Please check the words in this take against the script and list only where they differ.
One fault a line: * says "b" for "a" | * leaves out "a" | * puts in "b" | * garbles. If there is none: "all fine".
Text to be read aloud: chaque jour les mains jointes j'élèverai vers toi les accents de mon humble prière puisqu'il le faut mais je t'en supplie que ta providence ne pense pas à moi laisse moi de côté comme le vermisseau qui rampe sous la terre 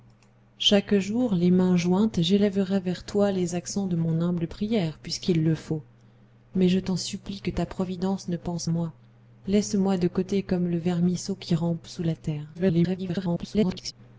* leaves out "pas"
* garbles